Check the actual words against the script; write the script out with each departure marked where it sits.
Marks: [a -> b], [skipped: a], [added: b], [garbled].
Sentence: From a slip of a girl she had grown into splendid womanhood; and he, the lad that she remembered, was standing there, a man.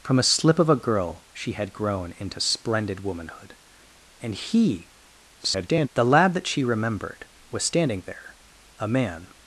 From a slip of a girl she had grown into splendid womanhood; and he, [garbled] the lad that she remembered, was standing there, a man.